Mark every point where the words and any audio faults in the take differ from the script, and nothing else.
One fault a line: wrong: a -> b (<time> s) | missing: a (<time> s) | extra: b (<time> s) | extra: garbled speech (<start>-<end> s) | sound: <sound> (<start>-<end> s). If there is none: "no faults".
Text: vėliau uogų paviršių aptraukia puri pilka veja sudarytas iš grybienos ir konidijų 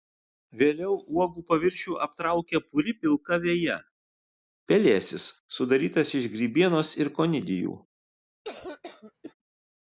extra: pelėsis (4.7 s)
sound: cough (8.4-9.3 s)